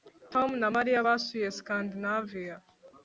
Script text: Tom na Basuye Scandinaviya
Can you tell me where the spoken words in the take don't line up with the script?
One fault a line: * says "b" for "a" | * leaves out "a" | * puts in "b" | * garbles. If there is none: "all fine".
* puts in "Mariya"